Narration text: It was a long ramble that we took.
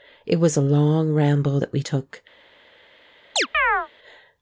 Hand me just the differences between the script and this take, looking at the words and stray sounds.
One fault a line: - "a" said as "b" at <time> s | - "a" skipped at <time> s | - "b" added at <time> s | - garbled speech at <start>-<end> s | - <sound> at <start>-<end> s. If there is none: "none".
- chirp at 3.4-3.9 s